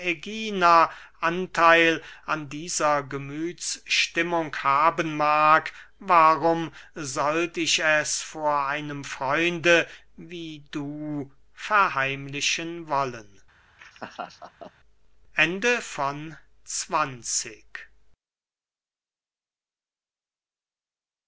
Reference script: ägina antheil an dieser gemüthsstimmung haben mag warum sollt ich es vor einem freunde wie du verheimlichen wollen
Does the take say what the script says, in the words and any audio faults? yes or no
no